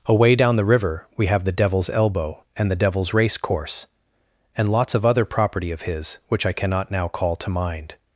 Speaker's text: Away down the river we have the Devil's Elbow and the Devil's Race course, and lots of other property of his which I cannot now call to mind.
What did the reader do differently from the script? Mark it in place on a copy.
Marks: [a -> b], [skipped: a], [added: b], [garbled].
Away down the river we have the Devil's Elbow and the Devil's Race course, and lots of other property of his which I cannot now call to mind.